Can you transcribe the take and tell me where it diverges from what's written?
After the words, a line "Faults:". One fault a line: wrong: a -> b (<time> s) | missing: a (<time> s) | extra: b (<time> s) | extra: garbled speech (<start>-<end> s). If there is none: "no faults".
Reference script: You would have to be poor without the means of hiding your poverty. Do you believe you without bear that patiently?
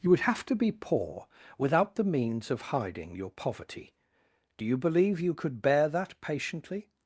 You would have to be poor without the means of hiding your poverty. Do you believe you could bear that patiently?
Faults:
wrong: without -> could (5.3 s)